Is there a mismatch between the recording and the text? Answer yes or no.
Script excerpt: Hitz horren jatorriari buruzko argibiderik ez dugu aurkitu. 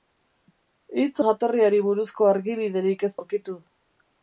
yes